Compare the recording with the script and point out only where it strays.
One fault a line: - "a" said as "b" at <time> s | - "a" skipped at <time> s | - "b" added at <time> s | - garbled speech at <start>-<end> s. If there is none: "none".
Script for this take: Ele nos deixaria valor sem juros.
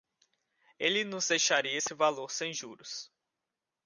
- "esse" added at 1.7 s